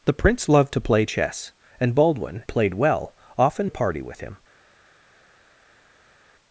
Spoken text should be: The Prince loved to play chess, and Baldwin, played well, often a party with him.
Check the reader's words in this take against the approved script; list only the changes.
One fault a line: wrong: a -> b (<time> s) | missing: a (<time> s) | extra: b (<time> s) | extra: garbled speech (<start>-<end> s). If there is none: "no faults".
no faults